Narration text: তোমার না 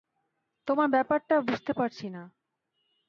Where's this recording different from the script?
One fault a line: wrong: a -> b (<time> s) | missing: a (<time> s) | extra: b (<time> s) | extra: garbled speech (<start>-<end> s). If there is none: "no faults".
extra: ব্যাপারটা বুঝতে পারছি (0.9 s)